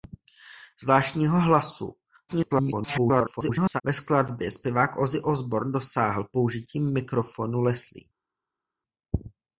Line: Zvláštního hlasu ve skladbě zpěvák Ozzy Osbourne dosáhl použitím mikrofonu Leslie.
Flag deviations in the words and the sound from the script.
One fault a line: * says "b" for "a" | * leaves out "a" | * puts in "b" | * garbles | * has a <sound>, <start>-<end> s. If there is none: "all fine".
* garbles